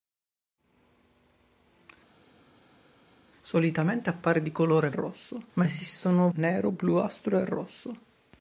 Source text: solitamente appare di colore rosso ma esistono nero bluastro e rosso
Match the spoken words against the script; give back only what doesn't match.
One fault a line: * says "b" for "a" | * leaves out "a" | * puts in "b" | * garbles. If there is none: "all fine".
all fine